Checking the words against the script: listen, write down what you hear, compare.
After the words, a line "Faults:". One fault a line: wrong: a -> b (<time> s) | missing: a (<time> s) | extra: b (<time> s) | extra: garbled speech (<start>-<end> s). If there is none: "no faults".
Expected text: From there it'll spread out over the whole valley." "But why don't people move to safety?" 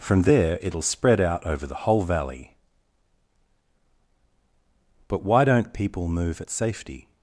From there it'll spread out over the whole valley." "But why don't people move at safety?"
Faults:
wrong: to -> at (6.4 s)